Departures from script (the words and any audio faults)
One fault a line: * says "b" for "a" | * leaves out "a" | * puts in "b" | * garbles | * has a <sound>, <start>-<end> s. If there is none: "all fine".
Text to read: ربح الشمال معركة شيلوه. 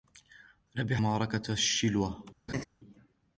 * leaves out "الشمال"
* has a laugh, 2.5-2.6 s